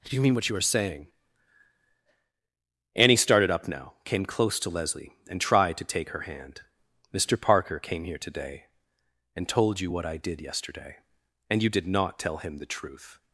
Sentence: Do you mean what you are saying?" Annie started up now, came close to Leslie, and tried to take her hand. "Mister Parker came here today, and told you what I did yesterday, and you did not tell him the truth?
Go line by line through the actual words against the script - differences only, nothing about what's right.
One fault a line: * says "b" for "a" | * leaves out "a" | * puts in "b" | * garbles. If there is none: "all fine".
all fine